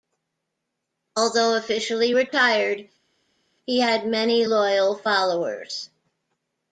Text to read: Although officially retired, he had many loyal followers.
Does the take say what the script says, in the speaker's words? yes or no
yes